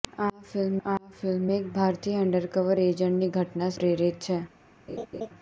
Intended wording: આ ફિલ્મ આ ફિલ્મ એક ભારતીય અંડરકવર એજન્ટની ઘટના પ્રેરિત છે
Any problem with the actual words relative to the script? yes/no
no